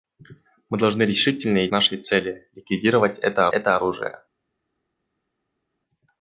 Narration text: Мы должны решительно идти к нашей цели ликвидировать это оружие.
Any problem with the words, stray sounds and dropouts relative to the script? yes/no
yes